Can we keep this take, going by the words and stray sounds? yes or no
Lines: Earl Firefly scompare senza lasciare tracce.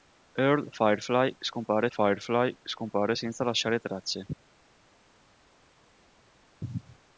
no